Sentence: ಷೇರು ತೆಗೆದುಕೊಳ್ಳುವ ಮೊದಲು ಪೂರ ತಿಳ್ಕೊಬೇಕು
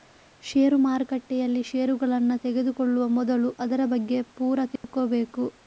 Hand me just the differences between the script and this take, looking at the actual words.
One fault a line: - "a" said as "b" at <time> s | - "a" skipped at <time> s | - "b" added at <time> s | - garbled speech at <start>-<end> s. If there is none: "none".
- "ಮಾರುಕಟ್ಟೆಯಲ್ಲಿ ಷೇರುಗಳನ್ನ" added at 0.8 s
- "ಅದರ ಬಗ್ಗೆ" added at 3.6 s